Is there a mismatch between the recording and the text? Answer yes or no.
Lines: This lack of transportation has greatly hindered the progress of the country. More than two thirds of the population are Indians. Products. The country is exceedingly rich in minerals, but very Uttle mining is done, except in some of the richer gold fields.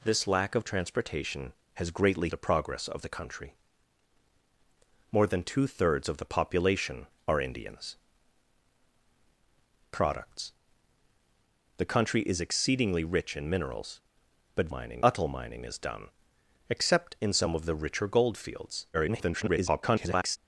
yes